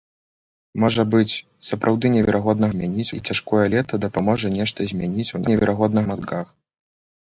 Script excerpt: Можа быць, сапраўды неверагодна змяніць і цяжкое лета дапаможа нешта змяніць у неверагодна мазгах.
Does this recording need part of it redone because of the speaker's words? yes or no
no